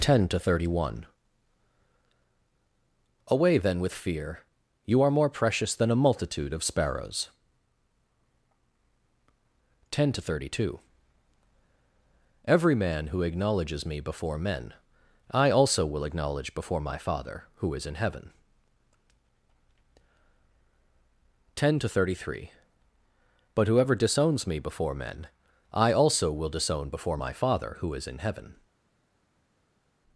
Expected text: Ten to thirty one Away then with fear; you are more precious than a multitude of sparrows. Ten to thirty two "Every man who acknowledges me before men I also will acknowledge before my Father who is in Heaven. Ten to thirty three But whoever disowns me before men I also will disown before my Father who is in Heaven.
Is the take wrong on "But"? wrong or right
right